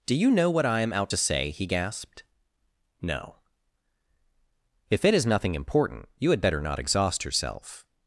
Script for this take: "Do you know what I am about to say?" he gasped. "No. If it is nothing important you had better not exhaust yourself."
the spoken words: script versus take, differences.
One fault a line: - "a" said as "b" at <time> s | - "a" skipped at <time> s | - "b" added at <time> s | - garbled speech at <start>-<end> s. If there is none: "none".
- "about" said as "out" at 0.9 s